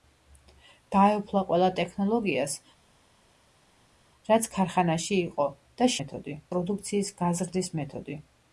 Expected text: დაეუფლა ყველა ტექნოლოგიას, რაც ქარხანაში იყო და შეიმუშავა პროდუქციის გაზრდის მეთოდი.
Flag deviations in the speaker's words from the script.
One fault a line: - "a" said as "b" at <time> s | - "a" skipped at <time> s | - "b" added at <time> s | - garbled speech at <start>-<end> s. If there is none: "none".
- "შეიმუშავა" said as "მეთოდი" at 6.0 s